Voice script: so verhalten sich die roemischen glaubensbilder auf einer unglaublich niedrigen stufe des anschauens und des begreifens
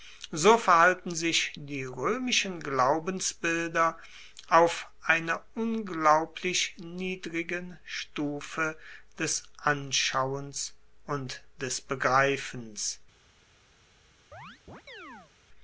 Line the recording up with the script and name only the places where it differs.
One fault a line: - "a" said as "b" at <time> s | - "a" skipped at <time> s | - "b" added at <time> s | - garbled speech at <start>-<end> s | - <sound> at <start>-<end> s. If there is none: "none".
- chirp at 14.3-15.3 s